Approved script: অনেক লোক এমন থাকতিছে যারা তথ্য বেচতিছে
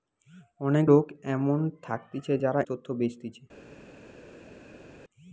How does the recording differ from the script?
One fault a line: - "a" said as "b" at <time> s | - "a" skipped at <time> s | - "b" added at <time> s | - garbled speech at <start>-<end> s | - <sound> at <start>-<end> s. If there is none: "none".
none